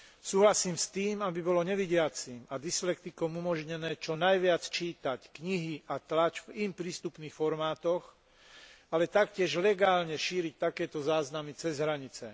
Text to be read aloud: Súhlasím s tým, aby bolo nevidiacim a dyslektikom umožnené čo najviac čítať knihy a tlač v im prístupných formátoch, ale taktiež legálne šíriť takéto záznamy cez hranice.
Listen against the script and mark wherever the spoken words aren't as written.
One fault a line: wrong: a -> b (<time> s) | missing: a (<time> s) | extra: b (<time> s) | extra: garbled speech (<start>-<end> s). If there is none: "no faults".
no faults